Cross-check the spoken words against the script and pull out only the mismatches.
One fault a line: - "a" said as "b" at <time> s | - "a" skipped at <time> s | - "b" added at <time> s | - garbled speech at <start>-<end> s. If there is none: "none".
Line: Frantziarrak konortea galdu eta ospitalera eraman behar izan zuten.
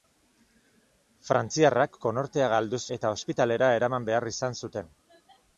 none